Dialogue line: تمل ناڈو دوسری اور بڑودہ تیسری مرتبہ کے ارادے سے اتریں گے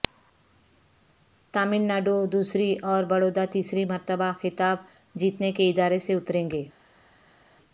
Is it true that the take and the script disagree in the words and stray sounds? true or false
true